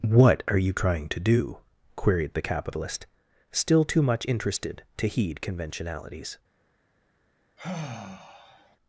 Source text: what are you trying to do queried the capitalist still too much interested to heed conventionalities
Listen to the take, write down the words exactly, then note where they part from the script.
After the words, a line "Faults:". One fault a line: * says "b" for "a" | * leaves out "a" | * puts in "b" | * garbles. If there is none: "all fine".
what are you trying to do queried the capitalist still too much interested to heed conventionalities
Faults:
all fine